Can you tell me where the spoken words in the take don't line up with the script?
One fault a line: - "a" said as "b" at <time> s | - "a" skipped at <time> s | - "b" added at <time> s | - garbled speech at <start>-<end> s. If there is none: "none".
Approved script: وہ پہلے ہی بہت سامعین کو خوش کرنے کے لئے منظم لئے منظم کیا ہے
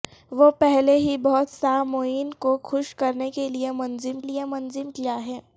none